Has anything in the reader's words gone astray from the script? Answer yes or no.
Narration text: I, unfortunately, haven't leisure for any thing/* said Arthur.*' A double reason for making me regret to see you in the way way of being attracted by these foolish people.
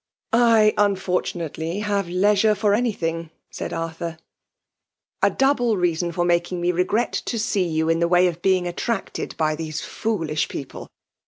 yes